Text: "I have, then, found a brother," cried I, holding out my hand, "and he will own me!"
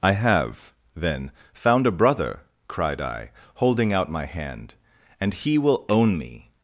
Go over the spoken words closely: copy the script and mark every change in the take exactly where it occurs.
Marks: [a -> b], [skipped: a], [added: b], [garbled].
"I have, then, found a brother," cried I, holding out my hand, "and he will own me!"